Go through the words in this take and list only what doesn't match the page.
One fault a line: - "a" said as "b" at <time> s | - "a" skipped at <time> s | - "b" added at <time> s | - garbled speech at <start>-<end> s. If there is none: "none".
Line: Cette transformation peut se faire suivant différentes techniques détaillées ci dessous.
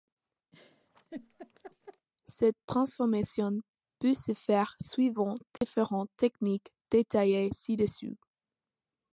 none